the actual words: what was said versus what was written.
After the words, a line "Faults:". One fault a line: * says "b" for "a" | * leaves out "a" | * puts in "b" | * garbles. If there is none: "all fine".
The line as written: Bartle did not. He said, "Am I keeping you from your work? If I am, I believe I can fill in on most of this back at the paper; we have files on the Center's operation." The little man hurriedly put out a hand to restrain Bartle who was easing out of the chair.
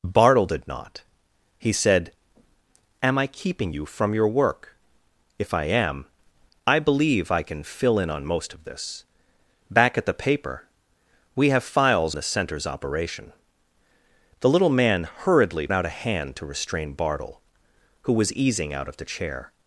Bartle did not. He said, "Am I keeping you from your work? If I am, I believe I can fill in on most of this back at the paper; we have files the Center's operation." The little man hurriedly out a hand to restrain Bartle who was easing out of the chair.
Faults:
* leaves out "on"
* leaves out "put"